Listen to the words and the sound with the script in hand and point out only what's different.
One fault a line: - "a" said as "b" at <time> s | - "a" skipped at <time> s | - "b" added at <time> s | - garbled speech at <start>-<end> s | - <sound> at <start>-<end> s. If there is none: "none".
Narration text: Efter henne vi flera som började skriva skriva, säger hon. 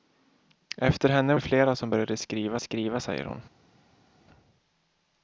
none